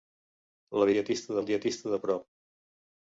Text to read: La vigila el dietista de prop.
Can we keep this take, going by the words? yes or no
no